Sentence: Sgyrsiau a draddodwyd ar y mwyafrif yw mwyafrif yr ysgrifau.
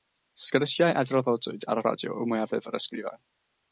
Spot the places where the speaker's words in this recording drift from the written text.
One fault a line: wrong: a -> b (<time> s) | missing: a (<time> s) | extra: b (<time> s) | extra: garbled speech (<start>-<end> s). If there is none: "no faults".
wrong: mwyafrif -> radio (1.8 s)